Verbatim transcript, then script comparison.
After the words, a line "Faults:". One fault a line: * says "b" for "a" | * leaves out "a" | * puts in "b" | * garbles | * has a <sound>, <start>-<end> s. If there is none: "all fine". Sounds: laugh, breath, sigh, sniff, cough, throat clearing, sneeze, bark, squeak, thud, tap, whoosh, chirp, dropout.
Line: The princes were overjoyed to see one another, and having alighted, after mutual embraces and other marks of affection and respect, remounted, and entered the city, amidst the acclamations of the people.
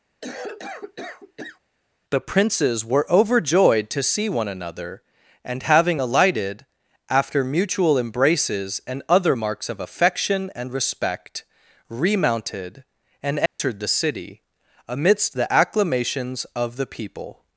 The princes were overjoyed to see one another, and having alighted, after mutual embraces and other marks of affection and respect, remounted, and entered the city, amidst the acclamations of the people.
Faults:
* has a cough, 0.2-1.6 s
* has a dropout, 13.5-13.6 s